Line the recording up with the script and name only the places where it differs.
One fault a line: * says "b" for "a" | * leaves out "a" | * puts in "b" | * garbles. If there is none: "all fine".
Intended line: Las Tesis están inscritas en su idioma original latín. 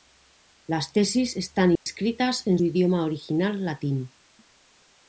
* leaves out "su"